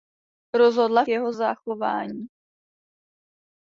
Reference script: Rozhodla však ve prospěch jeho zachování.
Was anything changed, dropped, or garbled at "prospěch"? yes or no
yes